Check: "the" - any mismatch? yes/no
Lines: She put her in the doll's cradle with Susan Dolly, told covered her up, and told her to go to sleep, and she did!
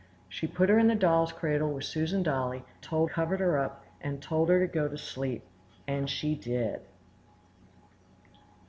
no